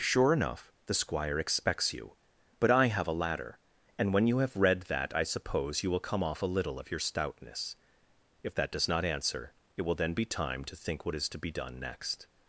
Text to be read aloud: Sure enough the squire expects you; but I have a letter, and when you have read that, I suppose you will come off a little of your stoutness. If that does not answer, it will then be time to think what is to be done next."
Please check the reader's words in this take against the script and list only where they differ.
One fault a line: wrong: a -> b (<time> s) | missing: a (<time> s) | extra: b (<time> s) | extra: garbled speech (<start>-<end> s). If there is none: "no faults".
wrong: letter -> ladder (3.2 s)